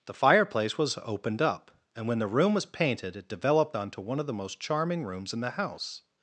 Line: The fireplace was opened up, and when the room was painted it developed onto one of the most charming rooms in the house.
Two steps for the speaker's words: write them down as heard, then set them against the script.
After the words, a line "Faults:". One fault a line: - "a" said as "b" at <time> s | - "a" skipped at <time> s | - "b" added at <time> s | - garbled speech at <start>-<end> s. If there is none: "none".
The fireplace was opened up, and when the room was painted it developed onto one of the most charming rooms in the house.
Faults:
none